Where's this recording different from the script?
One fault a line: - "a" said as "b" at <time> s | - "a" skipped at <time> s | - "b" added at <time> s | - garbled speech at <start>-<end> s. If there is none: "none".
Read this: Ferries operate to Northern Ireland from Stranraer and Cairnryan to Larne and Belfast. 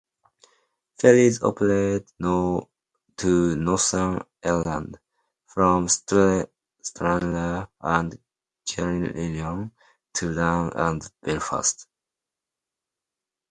none